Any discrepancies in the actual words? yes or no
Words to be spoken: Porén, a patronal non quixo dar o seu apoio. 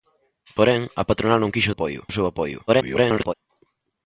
yes